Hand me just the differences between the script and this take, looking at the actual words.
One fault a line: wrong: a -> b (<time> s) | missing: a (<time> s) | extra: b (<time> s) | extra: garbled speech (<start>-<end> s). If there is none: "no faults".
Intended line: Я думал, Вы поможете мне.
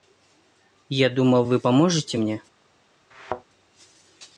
no faults